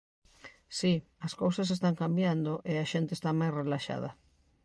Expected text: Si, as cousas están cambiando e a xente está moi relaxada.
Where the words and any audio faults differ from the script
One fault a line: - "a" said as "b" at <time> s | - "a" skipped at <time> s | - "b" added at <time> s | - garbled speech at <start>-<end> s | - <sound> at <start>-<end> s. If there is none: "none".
- "moi" said as "máis" at 3.4 s